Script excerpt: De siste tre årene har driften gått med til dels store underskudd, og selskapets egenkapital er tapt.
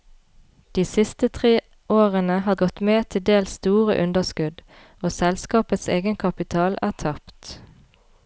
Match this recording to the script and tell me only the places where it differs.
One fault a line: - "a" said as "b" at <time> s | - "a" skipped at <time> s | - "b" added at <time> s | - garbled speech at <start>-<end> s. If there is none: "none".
- "driften" skipped at 2.5 s